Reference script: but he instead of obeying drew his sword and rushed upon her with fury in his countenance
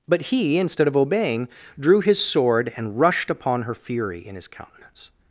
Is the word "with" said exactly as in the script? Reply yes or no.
no